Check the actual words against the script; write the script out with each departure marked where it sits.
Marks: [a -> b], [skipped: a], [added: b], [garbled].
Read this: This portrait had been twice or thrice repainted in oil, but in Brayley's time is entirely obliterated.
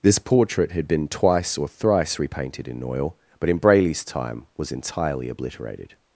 This portrait had been twice or thrice repainted in oil, but in Brayley's time [is -> was] entirely obliterated.